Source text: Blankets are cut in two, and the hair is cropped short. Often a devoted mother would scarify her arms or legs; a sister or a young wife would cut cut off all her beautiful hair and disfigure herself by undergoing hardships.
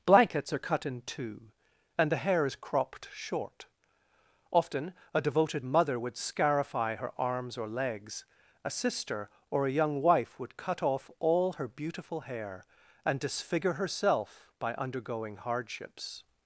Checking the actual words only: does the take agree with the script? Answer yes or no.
no